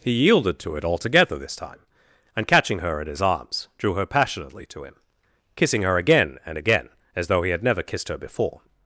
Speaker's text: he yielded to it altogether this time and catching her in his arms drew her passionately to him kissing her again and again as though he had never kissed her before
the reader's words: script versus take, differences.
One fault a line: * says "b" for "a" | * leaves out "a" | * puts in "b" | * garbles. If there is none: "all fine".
all fine